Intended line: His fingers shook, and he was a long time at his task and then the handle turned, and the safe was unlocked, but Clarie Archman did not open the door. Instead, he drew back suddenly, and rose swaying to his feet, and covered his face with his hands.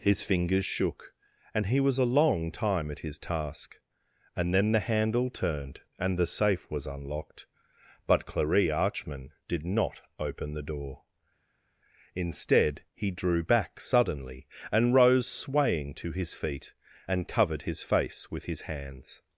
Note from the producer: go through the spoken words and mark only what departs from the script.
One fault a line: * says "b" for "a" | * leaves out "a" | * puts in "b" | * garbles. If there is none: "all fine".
all fine